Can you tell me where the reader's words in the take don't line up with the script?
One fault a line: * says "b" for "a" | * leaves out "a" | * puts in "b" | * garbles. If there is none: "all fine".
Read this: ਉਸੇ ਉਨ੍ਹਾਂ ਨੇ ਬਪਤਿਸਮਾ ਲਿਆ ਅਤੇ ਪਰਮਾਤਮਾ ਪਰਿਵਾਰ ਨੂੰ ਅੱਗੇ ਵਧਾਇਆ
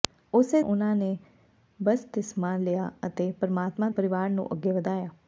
all fine